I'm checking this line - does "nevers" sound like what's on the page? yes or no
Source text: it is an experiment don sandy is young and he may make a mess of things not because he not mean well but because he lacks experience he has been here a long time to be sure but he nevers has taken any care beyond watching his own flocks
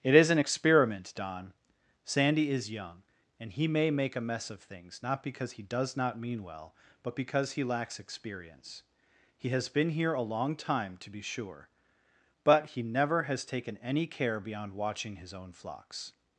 no